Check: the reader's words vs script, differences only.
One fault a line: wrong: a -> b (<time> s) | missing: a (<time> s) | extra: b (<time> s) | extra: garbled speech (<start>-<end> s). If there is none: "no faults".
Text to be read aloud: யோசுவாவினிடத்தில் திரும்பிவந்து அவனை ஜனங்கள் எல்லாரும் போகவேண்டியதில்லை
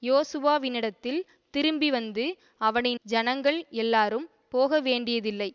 no faults